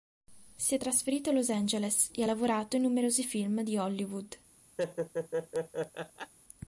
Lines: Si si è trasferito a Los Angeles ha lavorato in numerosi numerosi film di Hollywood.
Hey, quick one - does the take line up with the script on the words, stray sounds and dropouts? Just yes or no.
no